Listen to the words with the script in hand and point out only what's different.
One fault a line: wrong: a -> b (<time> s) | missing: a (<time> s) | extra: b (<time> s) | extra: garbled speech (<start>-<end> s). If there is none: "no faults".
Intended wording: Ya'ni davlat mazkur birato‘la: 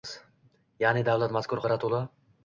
no faults